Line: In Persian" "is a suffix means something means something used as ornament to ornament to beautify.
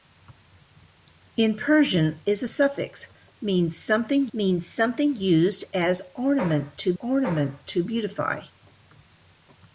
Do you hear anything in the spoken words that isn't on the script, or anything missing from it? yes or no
no